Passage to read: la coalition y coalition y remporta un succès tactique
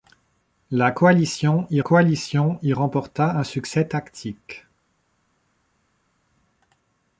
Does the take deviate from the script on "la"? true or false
false